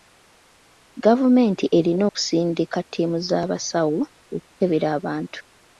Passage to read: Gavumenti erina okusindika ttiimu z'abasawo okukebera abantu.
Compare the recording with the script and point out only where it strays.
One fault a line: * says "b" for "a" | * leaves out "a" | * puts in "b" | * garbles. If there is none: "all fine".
all fine